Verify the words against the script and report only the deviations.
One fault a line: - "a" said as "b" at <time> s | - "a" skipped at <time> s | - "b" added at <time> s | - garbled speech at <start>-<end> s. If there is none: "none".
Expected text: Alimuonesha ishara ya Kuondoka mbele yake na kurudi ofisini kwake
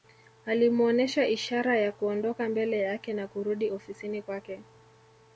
none